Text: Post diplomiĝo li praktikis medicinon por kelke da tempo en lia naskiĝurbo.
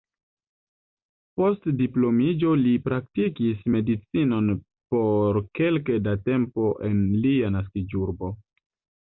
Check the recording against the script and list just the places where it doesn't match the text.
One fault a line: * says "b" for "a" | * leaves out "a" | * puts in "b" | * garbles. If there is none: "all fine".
all fine